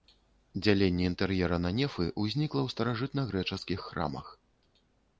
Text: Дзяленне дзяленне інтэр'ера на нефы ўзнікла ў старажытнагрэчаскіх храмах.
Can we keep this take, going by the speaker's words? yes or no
no